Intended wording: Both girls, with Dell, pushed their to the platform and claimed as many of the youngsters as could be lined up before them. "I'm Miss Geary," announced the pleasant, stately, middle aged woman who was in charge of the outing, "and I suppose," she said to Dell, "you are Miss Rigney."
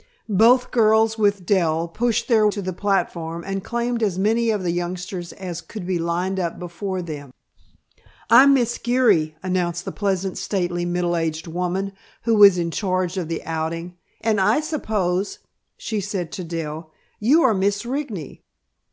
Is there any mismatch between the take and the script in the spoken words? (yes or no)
no